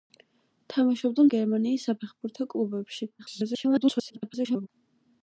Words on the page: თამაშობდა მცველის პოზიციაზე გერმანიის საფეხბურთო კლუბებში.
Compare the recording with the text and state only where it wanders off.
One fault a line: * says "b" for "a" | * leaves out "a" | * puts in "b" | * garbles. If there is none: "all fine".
* leaves out "მცველის პოზიციაზე"
* garbles